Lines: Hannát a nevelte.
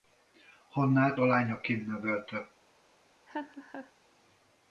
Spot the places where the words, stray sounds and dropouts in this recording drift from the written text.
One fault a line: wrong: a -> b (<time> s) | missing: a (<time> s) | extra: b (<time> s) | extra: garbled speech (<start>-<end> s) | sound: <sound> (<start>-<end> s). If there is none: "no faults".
extra: lányaként (1.2 s)
sound: laugh (3.3-3.9 s)